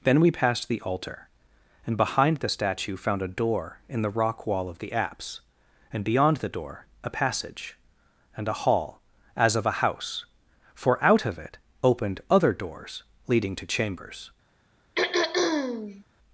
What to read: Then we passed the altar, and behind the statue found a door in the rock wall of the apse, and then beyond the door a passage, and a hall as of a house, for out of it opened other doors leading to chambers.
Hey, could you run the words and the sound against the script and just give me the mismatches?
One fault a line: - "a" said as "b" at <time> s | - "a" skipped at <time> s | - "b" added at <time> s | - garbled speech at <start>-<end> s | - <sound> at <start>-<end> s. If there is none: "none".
- "then" skipped at 6.0 s
- throat clearing at 15.0-16.0 s